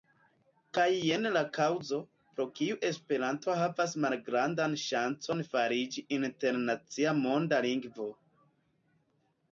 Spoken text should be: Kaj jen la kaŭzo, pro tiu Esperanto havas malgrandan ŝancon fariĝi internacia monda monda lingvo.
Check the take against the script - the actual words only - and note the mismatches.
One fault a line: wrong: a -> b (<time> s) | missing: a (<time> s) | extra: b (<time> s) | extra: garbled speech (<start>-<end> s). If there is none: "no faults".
wrong: tiu -> kiu (2.6 s)
missing: monda (7.6 s)